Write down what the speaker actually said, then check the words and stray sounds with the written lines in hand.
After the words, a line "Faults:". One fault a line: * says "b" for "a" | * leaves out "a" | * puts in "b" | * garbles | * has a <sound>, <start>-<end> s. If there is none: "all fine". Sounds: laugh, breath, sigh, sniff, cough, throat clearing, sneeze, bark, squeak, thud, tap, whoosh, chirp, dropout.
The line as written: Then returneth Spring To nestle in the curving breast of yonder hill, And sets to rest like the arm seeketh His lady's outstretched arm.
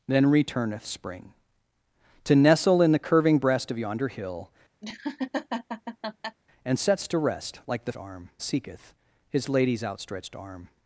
Then returneth Spring To nestle in the curving breast of yonder hill, And sets to rest like the arm seeketh His lady's outstretched arm.
Faults:
* has a laugh, 4.8-6.4 s